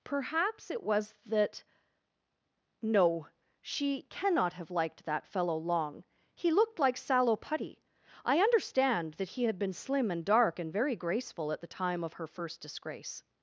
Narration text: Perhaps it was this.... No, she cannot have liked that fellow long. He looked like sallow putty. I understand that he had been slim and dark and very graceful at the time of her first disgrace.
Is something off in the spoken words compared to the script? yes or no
yes